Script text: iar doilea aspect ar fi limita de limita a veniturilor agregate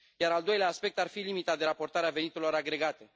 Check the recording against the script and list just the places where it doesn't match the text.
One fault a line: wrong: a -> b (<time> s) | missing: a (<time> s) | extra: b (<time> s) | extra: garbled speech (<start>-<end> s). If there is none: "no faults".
extra: al (0.3 s)
wrong: limita -> raportare (1.6 s)